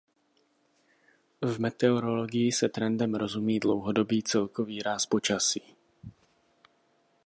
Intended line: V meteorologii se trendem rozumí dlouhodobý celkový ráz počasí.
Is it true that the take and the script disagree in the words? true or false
false